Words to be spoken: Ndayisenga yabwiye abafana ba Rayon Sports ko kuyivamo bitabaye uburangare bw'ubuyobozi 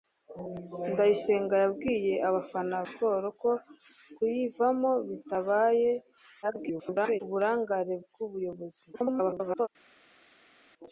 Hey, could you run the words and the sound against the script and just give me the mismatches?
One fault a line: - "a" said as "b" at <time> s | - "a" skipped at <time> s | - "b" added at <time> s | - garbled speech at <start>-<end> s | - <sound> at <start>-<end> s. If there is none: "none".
- "ba Rayon" skipped at 2.8 s
- garbled speech at 6.4-7.2 s
- garbled speech at 8.9-9.7 s